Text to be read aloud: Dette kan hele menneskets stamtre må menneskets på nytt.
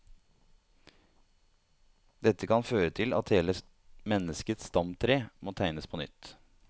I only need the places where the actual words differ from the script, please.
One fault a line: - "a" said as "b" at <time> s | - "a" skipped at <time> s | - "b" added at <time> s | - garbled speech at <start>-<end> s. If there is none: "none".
- "føre til at" added at 2.7 s
- "menneskets" said as "tegnes" at 5.6 s